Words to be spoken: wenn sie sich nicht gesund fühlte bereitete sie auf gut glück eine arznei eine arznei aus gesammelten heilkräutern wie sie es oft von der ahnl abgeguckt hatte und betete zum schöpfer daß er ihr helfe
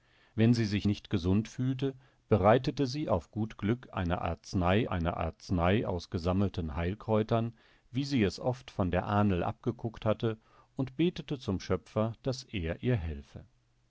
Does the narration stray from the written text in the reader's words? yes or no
no